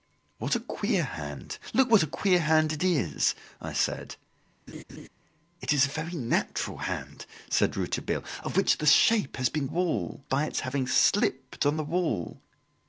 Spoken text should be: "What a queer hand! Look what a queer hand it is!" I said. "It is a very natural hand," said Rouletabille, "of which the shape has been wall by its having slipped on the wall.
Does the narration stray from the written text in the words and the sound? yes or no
yes